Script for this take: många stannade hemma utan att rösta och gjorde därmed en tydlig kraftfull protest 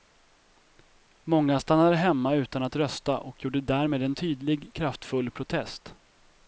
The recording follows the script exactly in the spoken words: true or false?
true